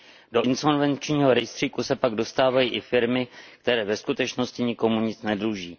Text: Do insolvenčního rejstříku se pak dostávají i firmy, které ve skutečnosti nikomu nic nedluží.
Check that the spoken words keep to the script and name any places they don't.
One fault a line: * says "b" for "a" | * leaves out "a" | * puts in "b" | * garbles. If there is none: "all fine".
all fine